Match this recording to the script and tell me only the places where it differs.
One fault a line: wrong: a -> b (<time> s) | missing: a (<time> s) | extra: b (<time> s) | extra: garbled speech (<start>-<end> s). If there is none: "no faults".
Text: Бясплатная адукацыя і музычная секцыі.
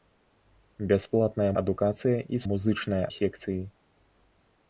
no faults